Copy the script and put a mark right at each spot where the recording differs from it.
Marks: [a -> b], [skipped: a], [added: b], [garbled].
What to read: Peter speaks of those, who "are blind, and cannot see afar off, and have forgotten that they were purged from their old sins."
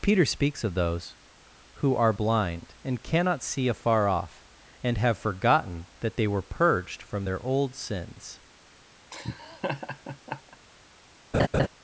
Peter speaks of those, who "are blind, and cannot see afar off, and have forgotten that they were purged from their old sins."